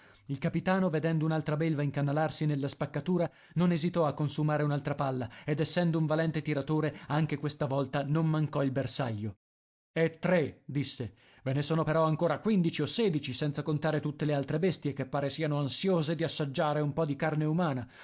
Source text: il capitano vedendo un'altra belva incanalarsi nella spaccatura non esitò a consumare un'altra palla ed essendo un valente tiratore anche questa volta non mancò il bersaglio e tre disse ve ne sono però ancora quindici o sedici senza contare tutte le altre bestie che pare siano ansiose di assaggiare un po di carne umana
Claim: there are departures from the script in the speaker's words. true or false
false